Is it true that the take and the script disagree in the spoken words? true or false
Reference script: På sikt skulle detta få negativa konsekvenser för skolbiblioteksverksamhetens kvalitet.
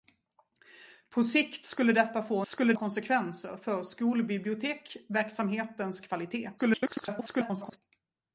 true